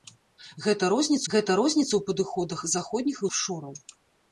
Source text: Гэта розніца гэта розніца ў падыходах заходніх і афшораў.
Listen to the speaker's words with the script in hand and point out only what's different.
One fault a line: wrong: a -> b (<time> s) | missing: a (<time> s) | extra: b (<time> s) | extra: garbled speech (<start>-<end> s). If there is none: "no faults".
no faults